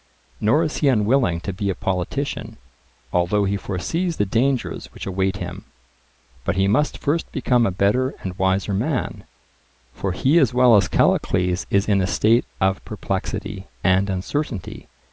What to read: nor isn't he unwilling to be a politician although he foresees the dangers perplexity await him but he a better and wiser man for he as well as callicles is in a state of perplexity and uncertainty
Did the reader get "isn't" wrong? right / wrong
wrong